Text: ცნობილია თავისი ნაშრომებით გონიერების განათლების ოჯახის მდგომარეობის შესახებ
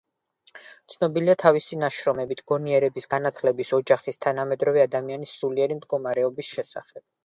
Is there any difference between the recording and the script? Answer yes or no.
yes